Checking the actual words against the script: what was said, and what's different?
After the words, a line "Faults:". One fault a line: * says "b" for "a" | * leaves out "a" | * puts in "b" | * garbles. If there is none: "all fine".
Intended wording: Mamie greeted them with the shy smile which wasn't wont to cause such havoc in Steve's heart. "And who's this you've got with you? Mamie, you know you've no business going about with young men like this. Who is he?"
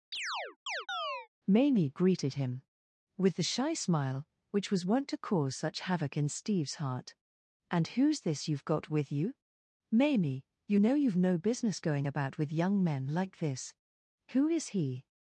Mamie greeted him with the shy smile which was wont to cause such havoc in Steve's heart. "And who's this you've got with you? Mamie, you know you've no business going about with young men like this. Who is he?"
Faults:
* says "him" for "them"
* says "was" for "wasn't"